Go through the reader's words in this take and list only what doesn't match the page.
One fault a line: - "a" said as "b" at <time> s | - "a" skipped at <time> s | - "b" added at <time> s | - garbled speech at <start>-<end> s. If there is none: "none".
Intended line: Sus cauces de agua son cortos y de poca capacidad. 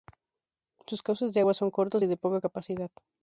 none